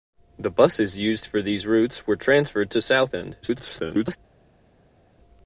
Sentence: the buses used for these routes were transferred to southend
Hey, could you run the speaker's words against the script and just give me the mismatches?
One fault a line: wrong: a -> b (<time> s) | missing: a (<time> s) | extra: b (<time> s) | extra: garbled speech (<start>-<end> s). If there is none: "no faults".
extra: garbled speech (3.4-4.2 s)